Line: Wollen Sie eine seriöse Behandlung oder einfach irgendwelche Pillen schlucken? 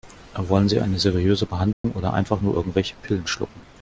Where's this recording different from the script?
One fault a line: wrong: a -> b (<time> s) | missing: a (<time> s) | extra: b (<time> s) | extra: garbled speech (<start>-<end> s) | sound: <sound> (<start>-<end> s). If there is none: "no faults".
sound: dropout (1.7-1.8 s)
extra: nur (2.4 s)